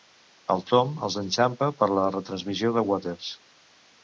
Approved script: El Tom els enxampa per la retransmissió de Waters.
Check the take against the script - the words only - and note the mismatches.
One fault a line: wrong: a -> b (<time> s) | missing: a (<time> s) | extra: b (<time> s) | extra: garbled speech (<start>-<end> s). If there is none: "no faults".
no faults